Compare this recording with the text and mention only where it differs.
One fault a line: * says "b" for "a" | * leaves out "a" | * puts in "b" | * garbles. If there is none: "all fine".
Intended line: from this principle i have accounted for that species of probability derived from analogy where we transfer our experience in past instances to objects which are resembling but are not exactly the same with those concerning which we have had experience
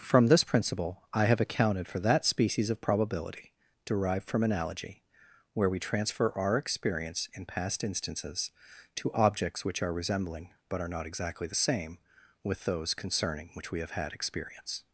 all fine